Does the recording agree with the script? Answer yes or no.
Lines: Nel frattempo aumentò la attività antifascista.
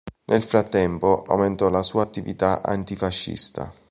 no